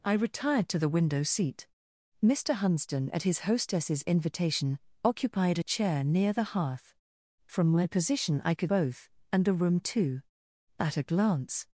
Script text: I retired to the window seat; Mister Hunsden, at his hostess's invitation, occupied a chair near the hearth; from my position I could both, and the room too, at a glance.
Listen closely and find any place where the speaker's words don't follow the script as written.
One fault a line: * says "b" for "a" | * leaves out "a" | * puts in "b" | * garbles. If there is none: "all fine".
all fine